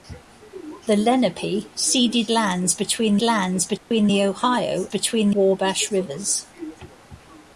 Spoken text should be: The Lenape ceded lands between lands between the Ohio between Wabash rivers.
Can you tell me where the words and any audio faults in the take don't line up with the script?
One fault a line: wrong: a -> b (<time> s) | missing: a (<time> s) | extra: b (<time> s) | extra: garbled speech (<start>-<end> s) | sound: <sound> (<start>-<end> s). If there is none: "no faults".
sound: dropout (3.8-3.9 s)